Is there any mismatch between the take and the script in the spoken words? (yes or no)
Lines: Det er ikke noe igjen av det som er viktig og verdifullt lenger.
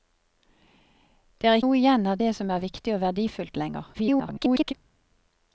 yes